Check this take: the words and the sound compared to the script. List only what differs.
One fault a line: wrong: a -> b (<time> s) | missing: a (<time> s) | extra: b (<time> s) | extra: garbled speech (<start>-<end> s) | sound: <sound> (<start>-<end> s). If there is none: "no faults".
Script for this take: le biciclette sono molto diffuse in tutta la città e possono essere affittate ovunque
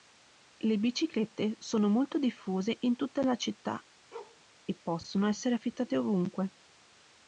sound: bark (4.1-4.4 s)